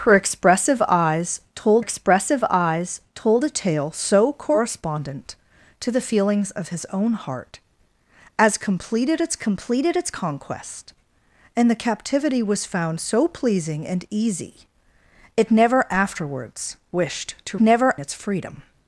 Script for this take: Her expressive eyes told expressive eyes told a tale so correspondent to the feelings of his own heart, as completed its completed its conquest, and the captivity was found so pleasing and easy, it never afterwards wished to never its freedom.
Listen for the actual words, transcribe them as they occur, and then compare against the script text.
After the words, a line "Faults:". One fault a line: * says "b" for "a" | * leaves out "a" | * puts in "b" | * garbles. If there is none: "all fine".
Her expressive eyes told expressive eyes told a tale so correspondent to the feelings of his own heart, as completed its completed its conquest, and the captivity was found so pleasing and easy, it never afterwards wished to never its freedom.
Faults:
all fine